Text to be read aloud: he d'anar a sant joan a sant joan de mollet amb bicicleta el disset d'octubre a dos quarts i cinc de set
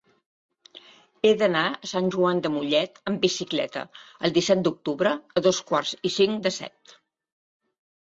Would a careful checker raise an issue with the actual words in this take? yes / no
yes